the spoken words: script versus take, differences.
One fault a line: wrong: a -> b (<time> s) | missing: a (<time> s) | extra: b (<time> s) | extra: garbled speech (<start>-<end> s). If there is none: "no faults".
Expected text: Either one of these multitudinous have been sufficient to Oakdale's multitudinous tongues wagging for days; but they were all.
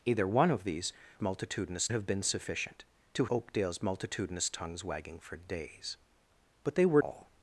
no faults